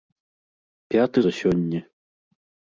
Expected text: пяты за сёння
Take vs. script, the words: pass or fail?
pass